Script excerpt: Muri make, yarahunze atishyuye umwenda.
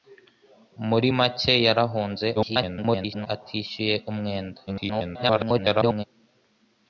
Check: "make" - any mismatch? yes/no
no